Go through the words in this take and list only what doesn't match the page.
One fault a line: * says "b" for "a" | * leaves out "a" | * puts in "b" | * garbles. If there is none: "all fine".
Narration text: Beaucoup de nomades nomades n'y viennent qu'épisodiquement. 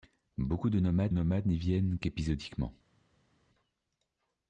all fine